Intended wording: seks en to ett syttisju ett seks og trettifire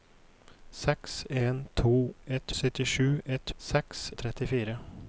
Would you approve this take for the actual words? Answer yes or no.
yes